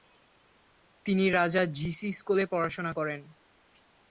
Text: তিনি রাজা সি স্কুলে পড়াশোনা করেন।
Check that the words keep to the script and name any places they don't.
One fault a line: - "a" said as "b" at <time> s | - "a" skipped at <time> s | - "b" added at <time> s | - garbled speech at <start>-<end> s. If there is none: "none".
- "জি" added at 1.8 s